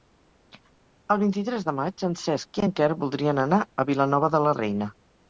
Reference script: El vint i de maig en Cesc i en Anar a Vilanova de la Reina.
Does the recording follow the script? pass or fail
fail